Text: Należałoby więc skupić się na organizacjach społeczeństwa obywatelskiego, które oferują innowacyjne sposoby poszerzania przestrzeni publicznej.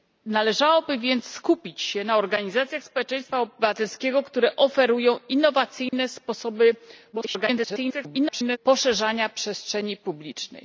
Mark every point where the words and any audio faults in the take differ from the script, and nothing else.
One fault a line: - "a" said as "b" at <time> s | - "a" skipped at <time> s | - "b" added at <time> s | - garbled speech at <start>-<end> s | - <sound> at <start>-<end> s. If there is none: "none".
- dropout at 5.9-5.9 s
- garbled speech at 7.1-8.6 s